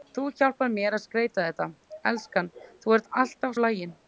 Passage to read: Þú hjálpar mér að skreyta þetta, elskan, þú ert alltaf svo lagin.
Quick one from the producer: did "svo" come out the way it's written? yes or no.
no